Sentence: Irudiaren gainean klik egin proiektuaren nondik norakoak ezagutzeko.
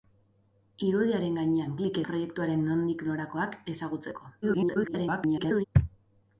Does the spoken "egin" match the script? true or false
false